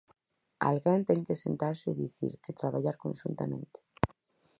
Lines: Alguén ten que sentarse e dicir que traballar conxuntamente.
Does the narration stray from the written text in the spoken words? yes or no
no